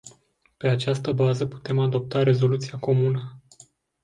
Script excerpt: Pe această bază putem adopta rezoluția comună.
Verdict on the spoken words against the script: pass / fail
pass